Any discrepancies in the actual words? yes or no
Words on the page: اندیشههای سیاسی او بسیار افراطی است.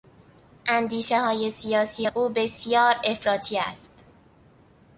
no